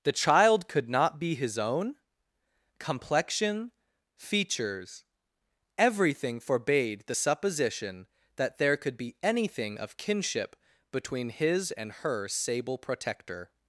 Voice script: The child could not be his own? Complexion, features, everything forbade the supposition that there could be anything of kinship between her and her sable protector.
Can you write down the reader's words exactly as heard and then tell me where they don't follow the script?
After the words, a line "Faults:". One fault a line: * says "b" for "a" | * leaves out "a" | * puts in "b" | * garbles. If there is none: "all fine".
The child could not be his own? Complexion, features, everything forbade the supposition that there could be anything of kinship between his and her sable protector.
Faults:
* says "his" for "her"